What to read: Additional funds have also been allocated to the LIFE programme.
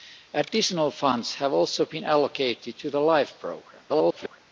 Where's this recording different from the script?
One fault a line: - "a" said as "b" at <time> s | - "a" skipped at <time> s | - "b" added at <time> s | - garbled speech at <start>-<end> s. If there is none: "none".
- garbled speech at 3.9-4.4 s